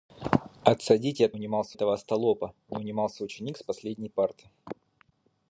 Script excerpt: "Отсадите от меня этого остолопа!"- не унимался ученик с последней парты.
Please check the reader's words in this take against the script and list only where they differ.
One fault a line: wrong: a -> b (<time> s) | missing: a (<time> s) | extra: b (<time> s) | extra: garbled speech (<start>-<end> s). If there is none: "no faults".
wrong: меня -> унимался (1.3 s)